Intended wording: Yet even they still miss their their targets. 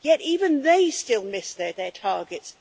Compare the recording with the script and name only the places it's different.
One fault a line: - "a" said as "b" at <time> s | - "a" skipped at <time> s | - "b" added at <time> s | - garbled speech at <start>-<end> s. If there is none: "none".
none